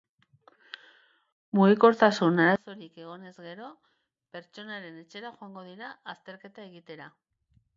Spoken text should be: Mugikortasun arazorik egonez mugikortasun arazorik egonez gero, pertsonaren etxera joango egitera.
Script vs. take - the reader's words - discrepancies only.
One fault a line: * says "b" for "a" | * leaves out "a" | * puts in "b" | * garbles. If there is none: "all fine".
* leaves out "mugikortasun arazorik egonez"
* puts in "dira azterketa"